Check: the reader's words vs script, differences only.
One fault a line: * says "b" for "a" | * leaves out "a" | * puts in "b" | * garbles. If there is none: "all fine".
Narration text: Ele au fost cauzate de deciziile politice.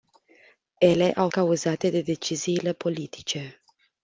* leaves out "fost"